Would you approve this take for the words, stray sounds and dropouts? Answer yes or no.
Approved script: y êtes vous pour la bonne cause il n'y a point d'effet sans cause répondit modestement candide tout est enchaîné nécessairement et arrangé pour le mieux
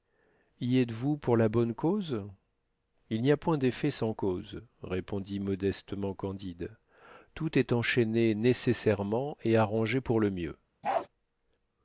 no